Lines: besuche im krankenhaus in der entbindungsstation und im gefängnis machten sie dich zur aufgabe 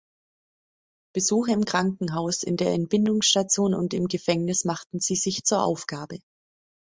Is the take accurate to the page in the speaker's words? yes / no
no